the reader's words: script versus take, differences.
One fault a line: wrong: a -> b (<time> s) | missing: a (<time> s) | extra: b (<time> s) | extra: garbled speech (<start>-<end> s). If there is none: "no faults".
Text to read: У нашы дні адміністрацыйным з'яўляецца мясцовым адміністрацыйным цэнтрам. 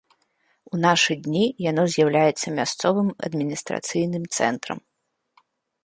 wrong: адміністрацыйным -> яно (1.7 s)